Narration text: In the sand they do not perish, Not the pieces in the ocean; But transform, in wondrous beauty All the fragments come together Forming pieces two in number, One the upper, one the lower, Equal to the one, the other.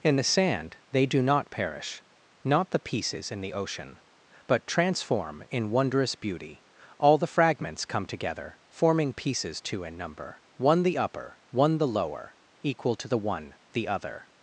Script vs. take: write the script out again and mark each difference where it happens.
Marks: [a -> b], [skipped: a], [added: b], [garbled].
In the sand they do not perish, Not the pieces in the ocean; But transform, in wondrous beauty All the fragments come together Forming pieces two in number, One the upper, one the lower, Equal to the one, the other.